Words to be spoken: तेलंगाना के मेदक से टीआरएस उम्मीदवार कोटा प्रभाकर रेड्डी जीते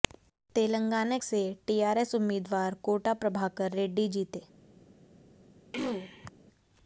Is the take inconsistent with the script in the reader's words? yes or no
yes